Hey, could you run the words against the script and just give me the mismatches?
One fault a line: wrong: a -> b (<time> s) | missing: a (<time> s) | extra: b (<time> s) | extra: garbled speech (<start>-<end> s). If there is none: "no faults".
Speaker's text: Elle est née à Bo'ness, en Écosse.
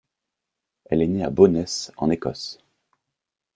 no faults